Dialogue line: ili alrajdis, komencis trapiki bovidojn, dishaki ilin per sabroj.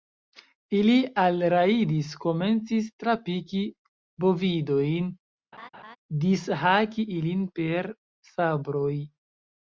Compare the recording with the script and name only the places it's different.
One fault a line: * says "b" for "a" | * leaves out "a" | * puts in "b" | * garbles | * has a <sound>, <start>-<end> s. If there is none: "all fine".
* has a laugh, 5.5-6.0 s